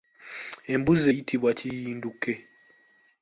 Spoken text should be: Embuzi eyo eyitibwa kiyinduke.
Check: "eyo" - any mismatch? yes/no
yes